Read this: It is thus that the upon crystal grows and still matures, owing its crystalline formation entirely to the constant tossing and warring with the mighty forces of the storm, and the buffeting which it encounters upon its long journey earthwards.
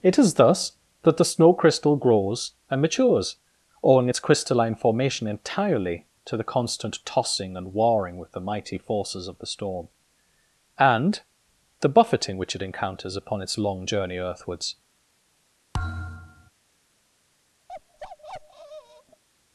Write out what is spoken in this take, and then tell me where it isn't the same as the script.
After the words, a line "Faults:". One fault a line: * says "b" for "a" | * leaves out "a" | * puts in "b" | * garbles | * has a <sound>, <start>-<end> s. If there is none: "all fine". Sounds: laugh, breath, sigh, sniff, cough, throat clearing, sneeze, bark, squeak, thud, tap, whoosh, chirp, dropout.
It is thus that the snow crystal grows and matures, owing its crystalline formation entirely to the constant tossing and warring with the mighty forces of the storm, and the buffeting which it encounters upon its long journey earthwards.
Faults:
* says "snow" for "upon"
* leaves out "still"
* has a thud, 15.7-16.5 s
* has a bark, 17.7-19.2 s